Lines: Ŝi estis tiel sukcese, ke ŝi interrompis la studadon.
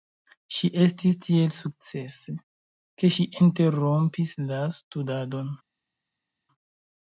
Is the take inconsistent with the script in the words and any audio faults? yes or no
no